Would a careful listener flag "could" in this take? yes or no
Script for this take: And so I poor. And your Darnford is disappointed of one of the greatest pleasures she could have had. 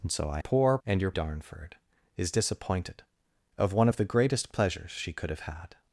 no